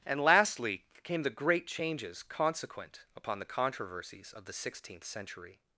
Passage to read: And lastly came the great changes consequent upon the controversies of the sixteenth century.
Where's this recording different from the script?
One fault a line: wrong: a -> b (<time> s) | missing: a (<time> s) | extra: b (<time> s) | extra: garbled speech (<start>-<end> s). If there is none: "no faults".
no faults